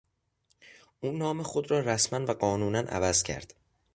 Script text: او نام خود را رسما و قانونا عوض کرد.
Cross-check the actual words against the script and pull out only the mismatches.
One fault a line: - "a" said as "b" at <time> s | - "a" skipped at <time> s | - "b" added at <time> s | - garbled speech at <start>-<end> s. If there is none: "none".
none